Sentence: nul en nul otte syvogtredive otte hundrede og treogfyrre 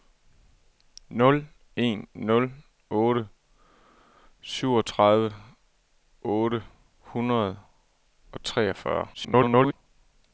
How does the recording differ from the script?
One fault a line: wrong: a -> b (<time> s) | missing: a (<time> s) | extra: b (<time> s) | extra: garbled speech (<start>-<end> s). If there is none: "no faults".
extra: garbled speech (9.1-9.7 s)